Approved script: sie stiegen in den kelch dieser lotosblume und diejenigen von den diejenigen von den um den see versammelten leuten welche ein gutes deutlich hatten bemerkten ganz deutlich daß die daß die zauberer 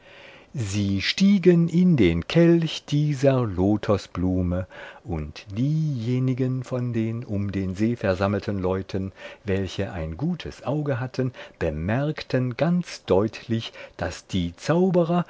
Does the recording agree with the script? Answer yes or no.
no